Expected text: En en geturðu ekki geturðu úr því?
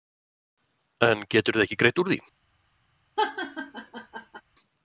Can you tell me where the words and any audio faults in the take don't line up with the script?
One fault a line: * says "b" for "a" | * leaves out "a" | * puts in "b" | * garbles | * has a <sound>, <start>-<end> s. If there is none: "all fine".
* leaves out "en"
* says "greitt" for "geturðu"
* has a laugh, 3.2-4.4 s